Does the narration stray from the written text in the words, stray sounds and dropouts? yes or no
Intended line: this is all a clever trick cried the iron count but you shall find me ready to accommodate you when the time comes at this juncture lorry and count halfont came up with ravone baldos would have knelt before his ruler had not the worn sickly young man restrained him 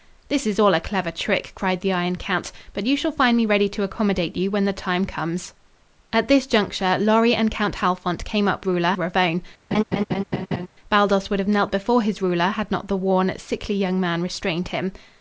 yes